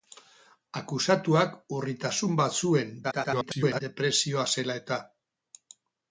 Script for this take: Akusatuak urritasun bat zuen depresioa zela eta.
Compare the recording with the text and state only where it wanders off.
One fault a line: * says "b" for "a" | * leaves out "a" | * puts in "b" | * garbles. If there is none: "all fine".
* garbles